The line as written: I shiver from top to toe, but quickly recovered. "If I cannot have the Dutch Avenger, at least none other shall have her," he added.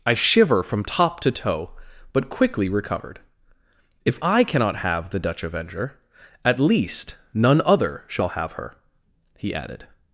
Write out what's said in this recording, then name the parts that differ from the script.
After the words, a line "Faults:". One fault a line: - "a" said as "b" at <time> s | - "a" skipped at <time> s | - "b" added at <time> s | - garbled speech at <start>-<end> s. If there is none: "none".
I shiver from top to toe, but quickly recovered. "If I cannot have the Dutch Avenger, at least none other shall have her," he added.
Faults:
none